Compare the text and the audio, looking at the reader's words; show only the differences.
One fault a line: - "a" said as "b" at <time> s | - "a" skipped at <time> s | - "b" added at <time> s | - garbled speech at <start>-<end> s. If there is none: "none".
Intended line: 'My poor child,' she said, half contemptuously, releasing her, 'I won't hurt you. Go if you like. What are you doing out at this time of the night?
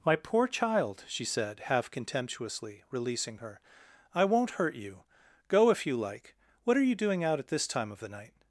none